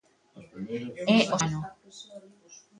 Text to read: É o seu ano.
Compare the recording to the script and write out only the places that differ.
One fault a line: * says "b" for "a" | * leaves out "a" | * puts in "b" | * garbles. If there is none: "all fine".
* leaves out "seu"